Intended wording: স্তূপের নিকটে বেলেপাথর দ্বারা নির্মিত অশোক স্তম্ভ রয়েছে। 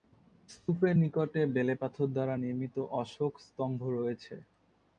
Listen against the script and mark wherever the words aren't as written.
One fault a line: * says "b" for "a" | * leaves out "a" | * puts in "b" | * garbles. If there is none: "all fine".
all fine